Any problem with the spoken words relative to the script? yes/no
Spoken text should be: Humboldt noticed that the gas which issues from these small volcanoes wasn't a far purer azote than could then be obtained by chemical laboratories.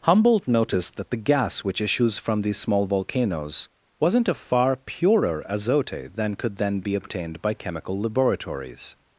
no